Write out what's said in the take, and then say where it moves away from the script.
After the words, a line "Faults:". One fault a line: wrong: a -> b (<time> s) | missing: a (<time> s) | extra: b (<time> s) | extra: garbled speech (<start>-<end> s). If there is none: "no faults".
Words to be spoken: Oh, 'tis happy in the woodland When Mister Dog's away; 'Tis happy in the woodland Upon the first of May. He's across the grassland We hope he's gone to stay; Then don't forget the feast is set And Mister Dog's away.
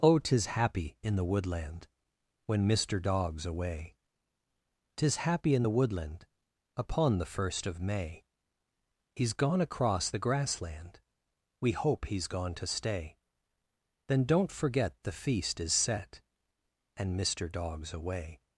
Oh, 'tis happy in the woodland When Mister Dog's away; 'Tis happy in the woodland Upon the first of May. He's gone across the grassland We hope he's gone to stay; Then don't forget the feast is set And Mister Dog's away.
Faults:
extra: gone (9.3 s)